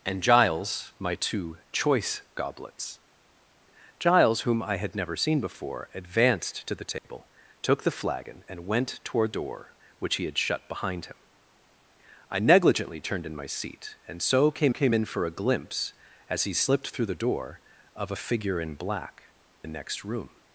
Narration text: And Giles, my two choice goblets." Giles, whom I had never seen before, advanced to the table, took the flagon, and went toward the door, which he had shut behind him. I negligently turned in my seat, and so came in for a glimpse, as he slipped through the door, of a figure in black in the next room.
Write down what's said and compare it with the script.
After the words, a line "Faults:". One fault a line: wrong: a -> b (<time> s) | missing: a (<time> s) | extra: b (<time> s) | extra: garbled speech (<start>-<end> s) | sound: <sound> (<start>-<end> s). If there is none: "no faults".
And Giles, my two choice goblets." Giles, whom I had never seen before, advanced to the table, took the flagon, and went toward door, which he had shut behind him. I negligently turned in my seat, and so came came in for a glimpse, as he slipped through the door, of a figure in black the next room.
Faults:
sound: dropout (7.0-7.0 s)
missing: the (9.3 s)
extra: came (14.7 s)
missing: in (19.3 s)